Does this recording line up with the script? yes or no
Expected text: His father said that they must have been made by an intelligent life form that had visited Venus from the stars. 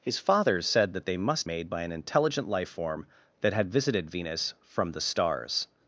no